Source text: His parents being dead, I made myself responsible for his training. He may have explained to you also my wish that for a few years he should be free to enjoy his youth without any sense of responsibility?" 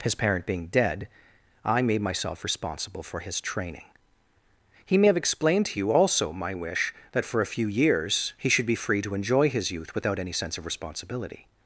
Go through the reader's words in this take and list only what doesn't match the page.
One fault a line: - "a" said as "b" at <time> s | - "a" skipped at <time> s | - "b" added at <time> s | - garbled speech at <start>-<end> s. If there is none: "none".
- "parents" said as "parent" at 0.1 s